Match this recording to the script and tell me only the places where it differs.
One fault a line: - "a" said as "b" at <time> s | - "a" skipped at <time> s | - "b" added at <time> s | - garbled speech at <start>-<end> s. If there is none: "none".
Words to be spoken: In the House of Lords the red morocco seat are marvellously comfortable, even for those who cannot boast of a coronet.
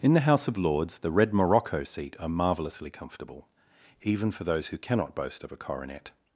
none